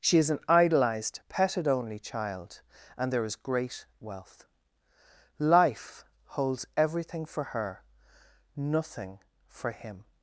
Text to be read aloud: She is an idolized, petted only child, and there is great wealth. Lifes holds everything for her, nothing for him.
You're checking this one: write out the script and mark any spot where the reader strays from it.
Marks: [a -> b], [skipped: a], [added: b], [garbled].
She is an idolized, petted only child, and there is great wealth. [Lifes -> Life] holds everything for her, nothing for him.